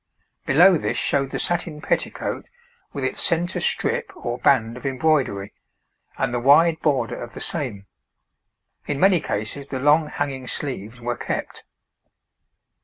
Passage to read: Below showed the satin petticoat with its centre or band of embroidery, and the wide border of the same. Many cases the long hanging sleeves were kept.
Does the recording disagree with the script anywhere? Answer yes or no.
yes